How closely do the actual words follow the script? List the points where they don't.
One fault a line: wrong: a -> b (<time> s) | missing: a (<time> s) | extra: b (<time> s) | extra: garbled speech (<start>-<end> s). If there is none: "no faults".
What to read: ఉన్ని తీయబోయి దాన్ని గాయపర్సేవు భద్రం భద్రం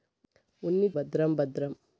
missing: తీయబోయి దాన్ని గాయపర్సేవు (0.9 s)